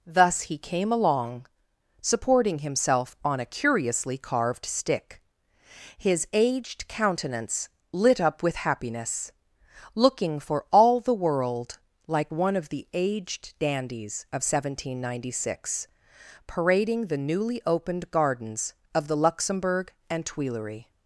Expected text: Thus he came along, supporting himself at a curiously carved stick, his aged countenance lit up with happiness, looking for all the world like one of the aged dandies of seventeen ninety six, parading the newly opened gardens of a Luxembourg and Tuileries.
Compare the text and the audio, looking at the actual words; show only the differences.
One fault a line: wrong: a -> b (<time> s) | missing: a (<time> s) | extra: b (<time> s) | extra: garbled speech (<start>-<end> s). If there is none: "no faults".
wrong: at -> on (3.2 s)
wrong: a -> the (19.1 s)